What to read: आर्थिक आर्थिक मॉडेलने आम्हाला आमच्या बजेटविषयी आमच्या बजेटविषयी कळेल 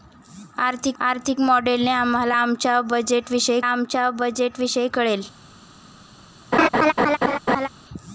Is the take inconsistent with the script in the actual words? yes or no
no